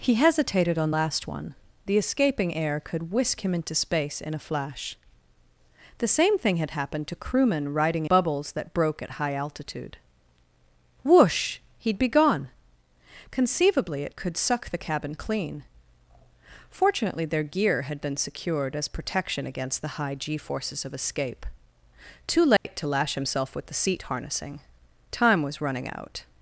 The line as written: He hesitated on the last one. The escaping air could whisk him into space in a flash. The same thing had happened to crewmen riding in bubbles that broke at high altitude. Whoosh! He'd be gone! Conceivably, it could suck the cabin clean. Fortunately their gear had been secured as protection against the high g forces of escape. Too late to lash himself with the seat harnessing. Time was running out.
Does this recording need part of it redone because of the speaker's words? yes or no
yes